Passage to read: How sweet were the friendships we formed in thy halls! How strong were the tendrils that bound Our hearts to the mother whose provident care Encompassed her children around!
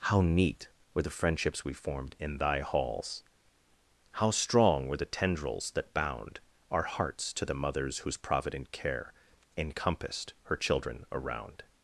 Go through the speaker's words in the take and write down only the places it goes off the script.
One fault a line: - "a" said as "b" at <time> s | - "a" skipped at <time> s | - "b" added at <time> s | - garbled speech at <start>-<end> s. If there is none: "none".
- "sweet" said as "neat" at 0.2 s
- "mother" said as "mothers" at 7.5 s